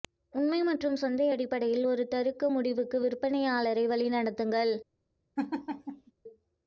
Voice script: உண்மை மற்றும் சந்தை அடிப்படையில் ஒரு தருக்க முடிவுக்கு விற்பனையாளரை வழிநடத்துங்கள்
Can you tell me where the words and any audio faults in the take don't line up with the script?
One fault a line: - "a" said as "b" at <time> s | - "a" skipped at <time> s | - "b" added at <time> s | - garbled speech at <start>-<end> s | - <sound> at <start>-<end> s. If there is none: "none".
- laugh at 5.4-6.1 s